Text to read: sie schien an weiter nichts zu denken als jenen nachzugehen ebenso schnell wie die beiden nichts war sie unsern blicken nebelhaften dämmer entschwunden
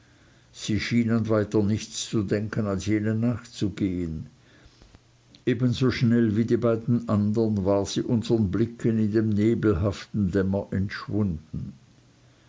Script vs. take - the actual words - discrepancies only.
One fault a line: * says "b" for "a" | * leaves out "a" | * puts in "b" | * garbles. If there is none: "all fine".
* says "andern" for "nichts"
* puts in "in dem"